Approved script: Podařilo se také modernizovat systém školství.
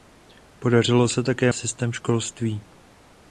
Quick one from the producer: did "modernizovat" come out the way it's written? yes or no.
no